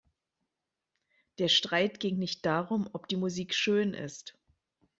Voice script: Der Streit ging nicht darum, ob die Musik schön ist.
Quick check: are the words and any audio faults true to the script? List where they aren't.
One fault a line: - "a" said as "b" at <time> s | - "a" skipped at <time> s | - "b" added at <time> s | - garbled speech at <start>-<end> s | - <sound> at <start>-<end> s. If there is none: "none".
none